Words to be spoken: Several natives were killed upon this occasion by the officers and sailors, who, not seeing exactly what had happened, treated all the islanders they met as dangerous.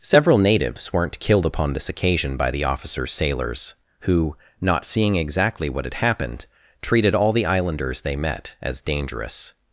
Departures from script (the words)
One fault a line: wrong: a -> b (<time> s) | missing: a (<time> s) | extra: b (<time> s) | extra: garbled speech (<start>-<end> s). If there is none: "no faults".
wrong: were -> weren't (0.9 s)
missing: and (3.1 s)